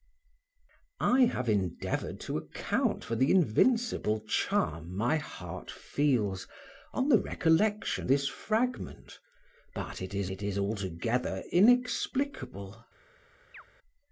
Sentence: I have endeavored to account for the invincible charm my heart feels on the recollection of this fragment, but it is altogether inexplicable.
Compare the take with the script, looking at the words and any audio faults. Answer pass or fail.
fail